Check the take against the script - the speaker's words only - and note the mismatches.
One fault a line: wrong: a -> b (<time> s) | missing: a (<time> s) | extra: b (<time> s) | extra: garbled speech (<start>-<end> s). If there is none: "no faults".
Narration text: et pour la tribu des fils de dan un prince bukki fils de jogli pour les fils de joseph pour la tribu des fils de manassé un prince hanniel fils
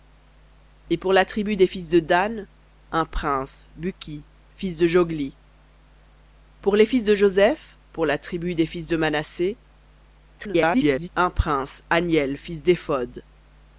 extra: garbled speech (10.4-11.1 s)